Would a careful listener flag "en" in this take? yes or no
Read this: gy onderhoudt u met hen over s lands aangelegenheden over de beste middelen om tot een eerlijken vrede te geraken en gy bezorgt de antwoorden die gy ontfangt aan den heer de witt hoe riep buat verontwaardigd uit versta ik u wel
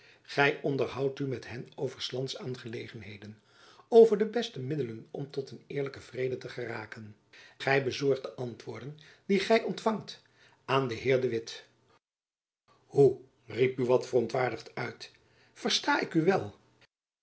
yes